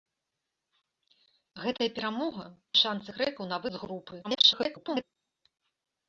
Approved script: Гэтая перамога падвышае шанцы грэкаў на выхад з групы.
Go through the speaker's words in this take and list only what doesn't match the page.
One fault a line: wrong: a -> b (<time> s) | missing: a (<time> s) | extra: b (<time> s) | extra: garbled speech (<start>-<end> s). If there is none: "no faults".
missing: падвышае (2.5 s)
missing: выхад (3.6 s)
extra: garbled speech (4.2-5.0 s)